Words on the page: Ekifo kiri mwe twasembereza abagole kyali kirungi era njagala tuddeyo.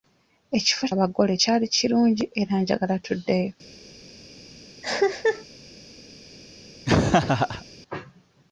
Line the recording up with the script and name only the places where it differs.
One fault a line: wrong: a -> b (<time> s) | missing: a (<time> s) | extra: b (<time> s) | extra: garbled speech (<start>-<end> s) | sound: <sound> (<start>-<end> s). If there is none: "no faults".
missing: kiri mwe twasembereza (0.8 s)
sound: cough (4.8-5.5 s)
sound: laugh (6.9-7.7 s)